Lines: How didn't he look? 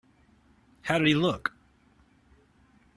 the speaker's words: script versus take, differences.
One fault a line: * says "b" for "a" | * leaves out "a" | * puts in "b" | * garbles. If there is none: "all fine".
* says "did" for "didn't"